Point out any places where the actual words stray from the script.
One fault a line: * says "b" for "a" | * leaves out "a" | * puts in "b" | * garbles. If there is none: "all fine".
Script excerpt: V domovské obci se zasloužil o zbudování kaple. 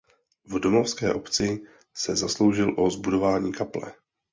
all fine